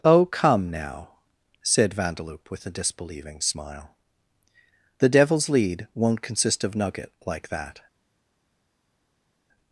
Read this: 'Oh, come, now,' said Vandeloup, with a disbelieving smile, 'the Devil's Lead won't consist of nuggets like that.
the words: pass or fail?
fail